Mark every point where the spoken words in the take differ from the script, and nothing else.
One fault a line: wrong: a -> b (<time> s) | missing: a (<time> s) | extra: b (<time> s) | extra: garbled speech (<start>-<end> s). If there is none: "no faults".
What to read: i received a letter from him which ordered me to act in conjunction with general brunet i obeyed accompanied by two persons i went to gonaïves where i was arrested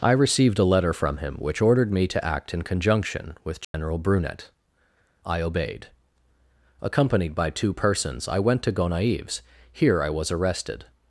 wrong: where -> here (9.7 s)